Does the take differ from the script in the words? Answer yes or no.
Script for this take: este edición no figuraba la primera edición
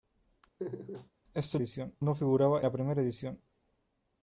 no